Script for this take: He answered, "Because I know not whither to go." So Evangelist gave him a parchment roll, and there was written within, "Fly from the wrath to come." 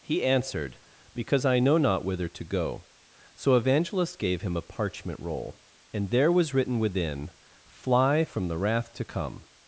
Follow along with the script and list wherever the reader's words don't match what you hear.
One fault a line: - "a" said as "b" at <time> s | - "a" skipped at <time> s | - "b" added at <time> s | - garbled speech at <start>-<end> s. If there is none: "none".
none